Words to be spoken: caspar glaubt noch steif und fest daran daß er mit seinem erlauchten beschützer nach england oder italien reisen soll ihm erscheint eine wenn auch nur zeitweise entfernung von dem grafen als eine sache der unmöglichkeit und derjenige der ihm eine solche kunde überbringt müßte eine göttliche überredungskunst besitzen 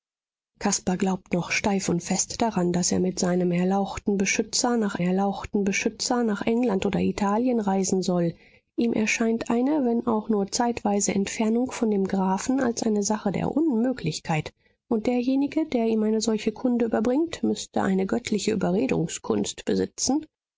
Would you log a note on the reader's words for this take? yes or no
yes